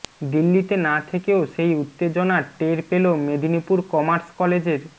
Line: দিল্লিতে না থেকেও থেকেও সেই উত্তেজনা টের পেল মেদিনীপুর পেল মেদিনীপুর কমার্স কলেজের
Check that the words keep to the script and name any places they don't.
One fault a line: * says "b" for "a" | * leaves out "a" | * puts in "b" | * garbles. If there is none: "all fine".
* leaves out "থেকেও"
* leaves out "পেল মেদিনীপুর"